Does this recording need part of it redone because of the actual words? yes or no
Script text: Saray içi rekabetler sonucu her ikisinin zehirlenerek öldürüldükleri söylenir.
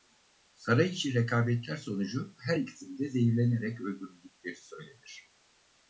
yes